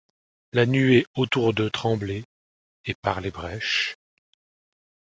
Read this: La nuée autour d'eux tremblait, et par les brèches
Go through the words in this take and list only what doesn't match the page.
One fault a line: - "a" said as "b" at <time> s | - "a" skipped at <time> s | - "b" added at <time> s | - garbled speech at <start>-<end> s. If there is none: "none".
none